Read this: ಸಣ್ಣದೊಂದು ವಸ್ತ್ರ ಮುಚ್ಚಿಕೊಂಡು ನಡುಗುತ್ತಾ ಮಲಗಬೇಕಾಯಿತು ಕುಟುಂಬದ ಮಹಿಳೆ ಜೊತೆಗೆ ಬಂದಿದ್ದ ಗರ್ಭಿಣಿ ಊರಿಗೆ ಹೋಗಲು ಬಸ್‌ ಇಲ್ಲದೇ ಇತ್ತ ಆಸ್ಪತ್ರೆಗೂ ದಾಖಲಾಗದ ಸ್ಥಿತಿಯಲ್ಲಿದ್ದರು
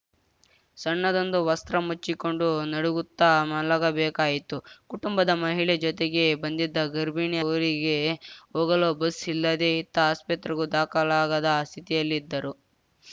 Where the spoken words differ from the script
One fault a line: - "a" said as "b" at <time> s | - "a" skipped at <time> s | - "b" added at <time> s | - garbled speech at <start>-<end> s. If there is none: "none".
none